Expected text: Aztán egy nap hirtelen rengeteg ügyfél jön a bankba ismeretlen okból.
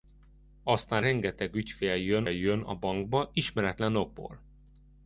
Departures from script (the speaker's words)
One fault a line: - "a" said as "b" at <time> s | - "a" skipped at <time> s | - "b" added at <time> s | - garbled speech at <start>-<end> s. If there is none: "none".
- "egy nap hirtelen" skipped at 1.1 s
- "jön" added at 2.3 s